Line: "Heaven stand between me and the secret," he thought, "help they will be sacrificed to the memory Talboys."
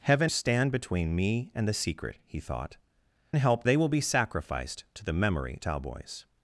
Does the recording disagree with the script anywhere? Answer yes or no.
no